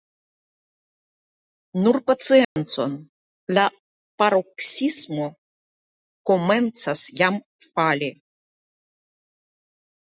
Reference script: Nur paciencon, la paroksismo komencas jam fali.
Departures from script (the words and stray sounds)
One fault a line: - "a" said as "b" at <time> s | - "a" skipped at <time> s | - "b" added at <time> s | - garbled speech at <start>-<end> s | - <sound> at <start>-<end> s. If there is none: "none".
- dropout at 2.4-2.6 s